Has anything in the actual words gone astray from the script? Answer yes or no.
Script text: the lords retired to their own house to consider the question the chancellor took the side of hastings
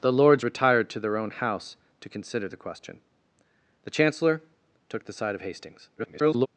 yes